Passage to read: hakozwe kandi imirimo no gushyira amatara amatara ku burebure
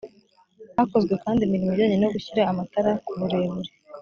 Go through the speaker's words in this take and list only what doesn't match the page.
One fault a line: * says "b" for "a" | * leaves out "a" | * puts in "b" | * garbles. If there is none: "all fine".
* puts in "ijyanye"
* leaves out "amatara"